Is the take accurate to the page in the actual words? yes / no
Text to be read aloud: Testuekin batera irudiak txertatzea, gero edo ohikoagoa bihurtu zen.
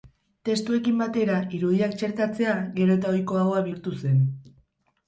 no